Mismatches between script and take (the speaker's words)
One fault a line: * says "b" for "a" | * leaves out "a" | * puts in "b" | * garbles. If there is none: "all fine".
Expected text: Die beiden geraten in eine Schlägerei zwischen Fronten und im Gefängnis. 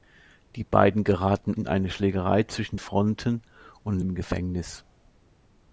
all fine